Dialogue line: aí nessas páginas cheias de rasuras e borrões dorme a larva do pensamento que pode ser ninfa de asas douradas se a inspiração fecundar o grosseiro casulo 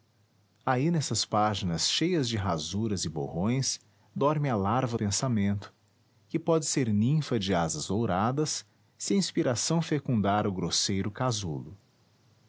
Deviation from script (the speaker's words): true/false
true